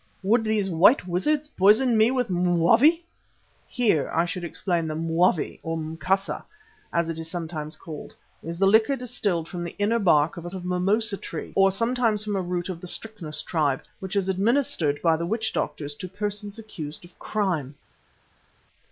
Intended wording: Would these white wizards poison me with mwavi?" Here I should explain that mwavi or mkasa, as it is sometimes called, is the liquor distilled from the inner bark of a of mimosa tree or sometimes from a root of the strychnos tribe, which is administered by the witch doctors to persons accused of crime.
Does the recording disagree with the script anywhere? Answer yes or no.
no